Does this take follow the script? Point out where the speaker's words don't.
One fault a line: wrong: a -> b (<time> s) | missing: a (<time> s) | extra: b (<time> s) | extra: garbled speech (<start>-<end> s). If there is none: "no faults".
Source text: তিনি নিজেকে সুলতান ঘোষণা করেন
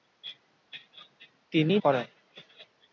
missing: নিজেকে সুলতান ঘোষণা (1.8 s)